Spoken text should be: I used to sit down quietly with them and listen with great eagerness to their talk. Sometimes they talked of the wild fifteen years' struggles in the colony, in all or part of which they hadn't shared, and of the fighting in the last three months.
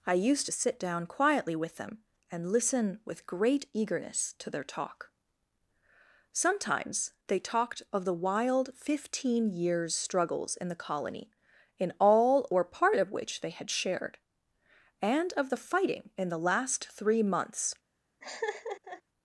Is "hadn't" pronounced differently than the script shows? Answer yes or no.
yes